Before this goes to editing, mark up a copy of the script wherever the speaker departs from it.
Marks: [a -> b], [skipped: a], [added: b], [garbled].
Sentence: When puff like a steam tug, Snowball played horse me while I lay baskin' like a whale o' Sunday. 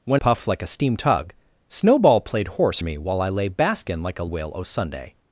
When puff like a steam tug, Snowball played horse me while I lay baskin' like a whale o' Sunday.